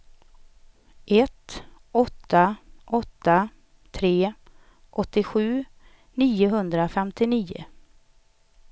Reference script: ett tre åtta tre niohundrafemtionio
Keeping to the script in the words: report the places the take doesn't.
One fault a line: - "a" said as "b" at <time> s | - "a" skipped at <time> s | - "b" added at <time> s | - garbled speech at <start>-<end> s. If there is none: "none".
- "tre" said as "åtta" at 1.9 s
- "åttiosju" added at 4.9 s